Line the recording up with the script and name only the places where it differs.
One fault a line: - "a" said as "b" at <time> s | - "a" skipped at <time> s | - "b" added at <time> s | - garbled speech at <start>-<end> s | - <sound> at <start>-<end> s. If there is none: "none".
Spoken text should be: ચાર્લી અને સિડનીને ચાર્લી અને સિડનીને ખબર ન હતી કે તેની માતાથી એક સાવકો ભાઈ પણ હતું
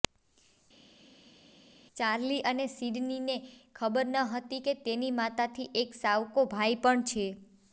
- "ચાર્લી અને સિડનીને" skipped at 3.4 s
- "હતું" said as "છે" at 7.1 s